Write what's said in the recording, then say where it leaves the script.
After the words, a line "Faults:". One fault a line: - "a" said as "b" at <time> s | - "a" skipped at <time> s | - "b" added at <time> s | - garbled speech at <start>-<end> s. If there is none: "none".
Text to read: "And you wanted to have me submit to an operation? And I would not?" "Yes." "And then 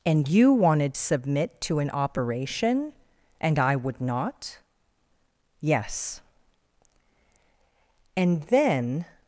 "And you wanted submit to an operation? And I would not?" "Yes." "And then
Faults:
- "to have me" skipped at 1.0 s